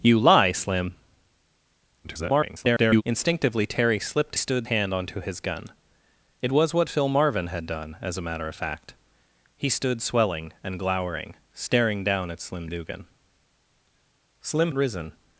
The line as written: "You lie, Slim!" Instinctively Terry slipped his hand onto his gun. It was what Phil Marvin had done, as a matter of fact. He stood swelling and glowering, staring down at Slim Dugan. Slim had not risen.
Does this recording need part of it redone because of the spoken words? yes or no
yes